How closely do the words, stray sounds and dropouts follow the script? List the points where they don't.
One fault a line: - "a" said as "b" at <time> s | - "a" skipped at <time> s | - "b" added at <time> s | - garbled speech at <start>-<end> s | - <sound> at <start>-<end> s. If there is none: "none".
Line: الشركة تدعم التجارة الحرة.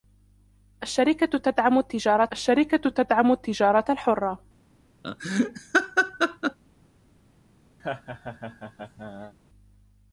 - "الشركة تدعم التجارة" added at 2.3 s
- laugh at 5.0-6.6 s
- laugh at 7.8-9.3 s